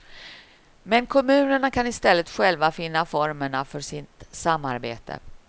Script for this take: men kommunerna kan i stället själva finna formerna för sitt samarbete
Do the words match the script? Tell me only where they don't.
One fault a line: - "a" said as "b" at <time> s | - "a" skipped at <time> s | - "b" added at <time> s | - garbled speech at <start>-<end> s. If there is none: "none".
none